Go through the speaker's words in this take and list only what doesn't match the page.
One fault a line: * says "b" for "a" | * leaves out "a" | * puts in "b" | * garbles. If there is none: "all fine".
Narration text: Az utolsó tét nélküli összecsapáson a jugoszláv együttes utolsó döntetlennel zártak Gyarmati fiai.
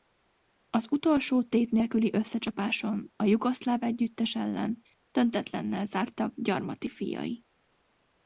* says "ellen" for "utolsó"